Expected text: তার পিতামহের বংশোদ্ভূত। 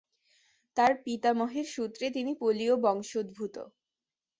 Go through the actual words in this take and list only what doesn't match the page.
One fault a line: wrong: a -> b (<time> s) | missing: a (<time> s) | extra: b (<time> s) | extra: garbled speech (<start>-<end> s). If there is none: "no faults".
extra: সূত্রে তিনি পোলীয় (1.7 s)